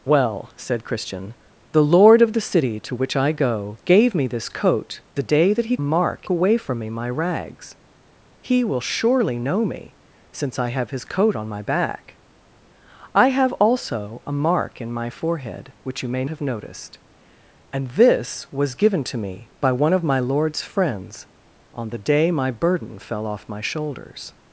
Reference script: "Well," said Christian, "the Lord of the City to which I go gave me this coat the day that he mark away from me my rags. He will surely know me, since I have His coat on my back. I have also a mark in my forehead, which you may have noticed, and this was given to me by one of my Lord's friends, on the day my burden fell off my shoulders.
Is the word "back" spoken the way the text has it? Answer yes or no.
yes